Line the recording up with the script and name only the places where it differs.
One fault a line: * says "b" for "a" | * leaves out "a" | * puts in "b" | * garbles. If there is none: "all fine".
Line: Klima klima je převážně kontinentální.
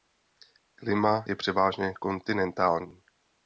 * leaves out "klima"